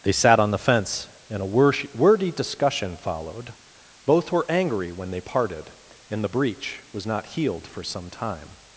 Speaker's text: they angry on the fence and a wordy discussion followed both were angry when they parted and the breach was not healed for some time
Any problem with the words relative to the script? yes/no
yes